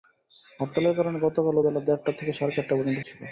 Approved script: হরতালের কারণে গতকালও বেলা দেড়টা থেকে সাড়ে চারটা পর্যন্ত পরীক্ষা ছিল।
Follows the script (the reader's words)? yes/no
no